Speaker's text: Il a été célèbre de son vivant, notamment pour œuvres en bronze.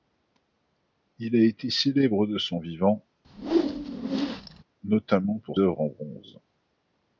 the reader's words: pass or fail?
pass